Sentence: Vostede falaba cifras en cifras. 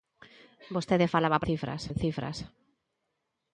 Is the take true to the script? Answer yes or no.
yes